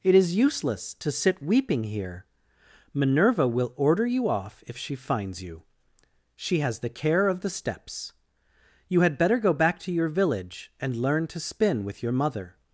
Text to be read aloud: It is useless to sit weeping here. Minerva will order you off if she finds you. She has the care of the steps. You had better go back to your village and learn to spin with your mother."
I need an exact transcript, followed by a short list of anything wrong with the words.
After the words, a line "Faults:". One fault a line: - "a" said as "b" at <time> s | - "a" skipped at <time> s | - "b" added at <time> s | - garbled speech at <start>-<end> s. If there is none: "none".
It is useless to sit weeping here. Minerva will order you off if she finds you. She has the care of the steps. You had better go back to your village and learn to spin with your mother."
Faults:
none